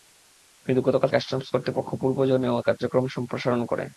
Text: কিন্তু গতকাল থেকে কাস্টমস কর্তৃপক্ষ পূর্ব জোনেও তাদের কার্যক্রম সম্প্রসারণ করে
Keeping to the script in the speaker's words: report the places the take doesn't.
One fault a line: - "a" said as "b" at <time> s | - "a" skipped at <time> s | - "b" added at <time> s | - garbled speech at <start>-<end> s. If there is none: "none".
- "থেকে" skipped at 1.1 s
- "তাদের" skipped at 2.7 s